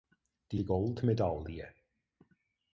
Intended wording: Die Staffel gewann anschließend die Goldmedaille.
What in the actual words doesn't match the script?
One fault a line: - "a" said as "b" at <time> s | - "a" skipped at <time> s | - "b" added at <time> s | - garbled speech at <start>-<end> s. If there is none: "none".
- "Staffel gewann anschließend" skipped at 0.6 s